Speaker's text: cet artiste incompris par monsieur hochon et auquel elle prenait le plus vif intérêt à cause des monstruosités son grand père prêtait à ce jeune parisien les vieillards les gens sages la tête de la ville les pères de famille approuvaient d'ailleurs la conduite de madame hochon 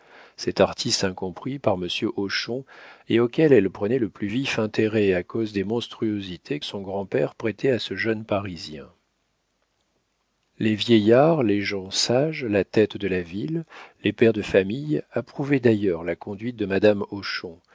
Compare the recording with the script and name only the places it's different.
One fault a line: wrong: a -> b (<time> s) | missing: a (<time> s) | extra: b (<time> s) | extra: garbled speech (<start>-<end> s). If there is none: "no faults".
no faults